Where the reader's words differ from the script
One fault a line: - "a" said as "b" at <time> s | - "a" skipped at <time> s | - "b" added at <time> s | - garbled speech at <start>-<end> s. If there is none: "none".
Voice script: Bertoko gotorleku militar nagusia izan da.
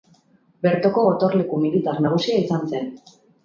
- "da" said as "zen" at 2.8 s